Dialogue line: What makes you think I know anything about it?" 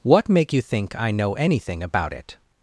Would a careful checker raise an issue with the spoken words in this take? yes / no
yes